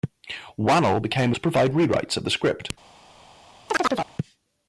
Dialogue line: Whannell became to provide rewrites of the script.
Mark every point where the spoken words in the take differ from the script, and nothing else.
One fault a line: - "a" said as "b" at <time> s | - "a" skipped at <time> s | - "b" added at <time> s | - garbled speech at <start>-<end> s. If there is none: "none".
none